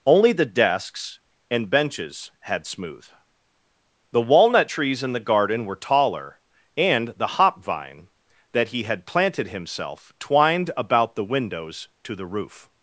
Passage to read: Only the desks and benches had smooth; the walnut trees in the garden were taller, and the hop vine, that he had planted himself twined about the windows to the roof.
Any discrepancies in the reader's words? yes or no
no